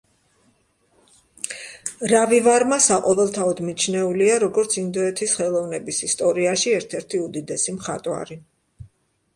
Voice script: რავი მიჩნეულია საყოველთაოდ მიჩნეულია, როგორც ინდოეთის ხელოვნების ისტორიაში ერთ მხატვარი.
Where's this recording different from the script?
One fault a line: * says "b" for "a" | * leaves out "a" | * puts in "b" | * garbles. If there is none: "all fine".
* says "ვარმა" for "მიჩნეულია"
* puts in "ერთი უდიდესი"